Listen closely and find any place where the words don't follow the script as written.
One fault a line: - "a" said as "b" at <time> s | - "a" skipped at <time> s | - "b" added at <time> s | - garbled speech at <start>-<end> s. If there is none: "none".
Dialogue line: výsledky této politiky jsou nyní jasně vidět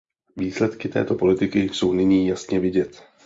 none